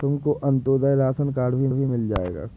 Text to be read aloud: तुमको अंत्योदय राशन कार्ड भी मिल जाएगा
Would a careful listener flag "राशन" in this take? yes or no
no